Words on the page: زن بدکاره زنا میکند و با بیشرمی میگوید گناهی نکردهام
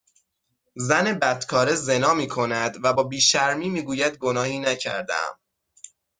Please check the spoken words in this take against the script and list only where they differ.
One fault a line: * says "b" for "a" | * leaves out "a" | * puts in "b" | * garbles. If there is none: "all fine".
all fine